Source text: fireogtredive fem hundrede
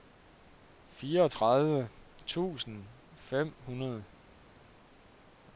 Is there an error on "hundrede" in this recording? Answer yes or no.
no